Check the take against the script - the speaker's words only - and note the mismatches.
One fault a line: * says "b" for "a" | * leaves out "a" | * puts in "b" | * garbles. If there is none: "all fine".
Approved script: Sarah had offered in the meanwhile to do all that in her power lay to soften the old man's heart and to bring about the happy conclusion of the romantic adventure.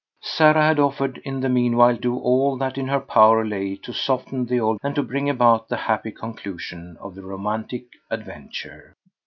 * leaves out "to"
* leaves out "man's heart"